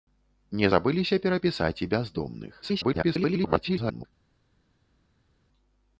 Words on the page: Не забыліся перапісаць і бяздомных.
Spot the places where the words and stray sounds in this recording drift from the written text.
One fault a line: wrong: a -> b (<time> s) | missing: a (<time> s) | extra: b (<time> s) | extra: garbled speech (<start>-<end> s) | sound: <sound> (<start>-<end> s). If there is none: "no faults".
extra: garbled speech (2.6-4.1 s)